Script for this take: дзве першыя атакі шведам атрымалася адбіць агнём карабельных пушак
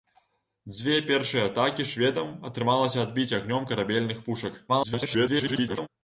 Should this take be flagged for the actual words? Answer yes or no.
yes